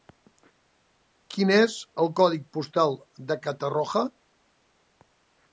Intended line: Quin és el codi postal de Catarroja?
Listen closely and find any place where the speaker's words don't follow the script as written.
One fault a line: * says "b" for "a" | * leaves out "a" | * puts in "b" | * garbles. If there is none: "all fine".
all fine